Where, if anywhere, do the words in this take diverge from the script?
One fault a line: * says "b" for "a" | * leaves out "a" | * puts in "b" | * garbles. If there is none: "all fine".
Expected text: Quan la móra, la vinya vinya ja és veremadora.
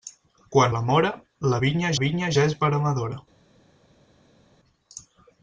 all fine